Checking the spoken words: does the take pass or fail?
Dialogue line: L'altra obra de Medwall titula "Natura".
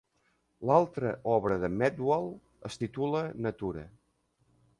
fail